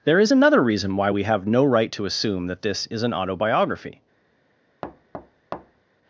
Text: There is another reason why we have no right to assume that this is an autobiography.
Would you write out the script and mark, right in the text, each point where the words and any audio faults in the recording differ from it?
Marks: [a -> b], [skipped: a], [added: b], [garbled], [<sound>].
There is another reason why we have no right to assume that this is an autobiography. [thud]